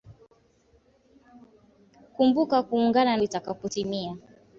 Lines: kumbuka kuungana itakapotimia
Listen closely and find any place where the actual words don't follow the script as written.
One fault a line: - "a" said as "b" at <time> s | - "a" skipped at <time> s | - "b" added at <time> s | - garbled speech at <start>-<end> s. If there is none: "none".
none